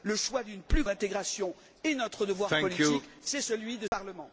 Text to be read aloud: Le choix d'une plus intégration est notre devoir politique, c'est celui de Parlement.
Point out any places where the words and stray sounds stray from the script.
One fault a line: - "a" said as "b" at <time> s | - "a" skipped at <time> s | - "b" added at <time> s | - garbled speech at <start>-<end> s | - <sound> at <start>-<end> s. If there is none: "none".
- dropout at 3.9-3.9 s